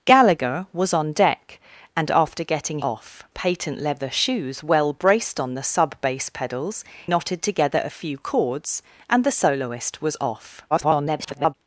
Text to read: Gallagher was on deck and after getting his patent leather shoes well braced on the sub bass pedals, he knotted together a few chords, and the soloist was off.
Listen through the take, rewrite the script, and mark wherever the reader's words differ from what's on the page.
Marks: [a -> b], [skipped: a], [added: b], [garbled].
Gallagher was on deck and after getting [his -> off] patent leather shoes well braced on the sub bass pedals, [skipped: he] knotted together a few chords, and the soloist was off. [garbled]